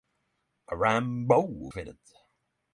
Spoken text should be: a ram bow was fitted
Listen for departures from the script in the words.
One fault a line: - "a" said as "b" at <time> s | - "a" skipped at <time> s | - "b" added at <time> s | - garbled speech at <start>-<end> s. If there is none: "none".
- "was" skipped at 1.4 s